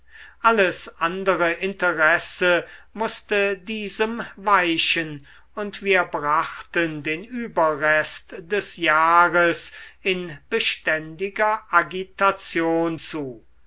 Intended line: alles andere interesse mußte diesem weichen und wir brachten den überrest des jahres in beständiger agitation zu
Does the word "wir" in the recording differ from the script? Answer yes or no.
no